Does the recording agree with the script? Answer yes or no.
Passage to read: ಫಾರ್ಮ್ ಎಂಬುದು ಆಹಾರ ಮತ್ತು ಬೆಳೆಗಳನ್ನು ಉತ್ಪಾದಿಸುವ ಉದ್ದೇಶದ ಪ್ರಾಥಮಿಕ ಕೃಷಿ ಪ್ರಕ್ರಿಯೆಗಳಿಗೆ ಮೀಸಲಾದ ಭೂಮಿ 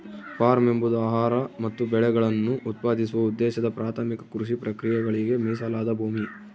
yes